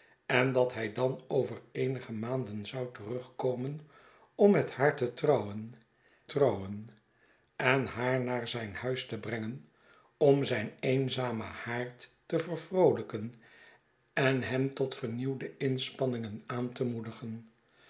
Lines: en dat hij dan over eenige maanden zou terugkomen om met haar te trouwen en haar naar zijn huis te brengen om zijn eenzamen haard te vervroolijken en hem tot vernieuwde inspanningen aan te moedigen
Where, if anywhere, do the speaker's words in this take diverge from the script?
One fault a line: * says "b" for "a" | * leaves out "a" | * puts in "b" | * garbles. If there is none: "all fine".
* puts in "trouwen"